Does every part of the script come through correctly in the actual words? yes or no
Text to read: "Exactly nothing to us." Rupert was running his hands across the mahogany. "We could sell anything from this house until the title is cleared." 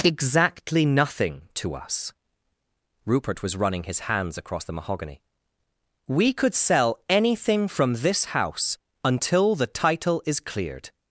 yes